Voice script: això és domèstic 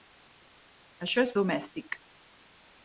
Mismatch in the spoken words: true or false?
false